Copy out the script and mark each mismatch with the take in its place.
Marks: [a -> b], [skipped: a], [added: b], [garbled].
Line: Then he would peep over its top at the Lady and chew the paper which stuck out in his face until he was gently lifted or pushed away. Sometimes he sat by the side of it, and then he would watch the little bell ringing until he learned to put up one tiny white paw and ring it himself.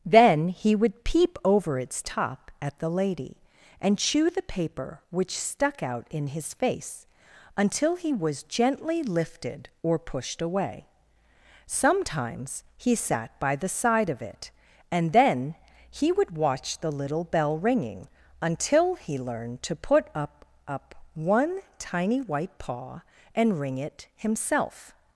Then he would peep over its top at the Lady and chew the paper which stuck out in his face until he was gently lifted or pushed away. Sometimes he sat by the side of it, and then he would watch the little bell ringing until he learned to put up [added: up] one tiny white paw and ring it himself.